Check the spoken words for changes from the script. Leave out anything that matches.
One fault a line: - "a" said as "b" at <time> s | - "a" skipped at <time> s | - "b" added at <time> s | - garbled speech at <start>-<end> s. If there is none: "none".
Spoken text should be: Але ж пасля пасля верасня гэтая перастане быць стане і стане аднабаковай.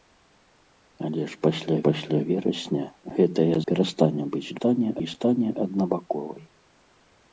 none